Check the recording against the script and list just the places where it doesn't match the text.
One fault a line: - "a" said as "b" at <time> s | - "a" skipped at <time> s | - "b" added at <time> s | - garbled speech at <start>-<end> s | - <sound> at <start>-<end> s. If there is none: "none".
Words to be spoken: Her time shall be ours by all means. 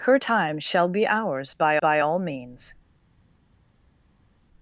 - "by" added at 1.8 s